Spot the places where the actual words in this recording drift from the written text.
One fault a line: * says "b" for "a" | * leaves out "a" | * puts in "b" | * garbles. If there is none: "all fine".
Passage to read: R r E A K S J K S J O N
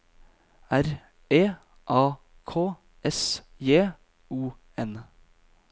* leaves out "r"
* leaves out "K S J"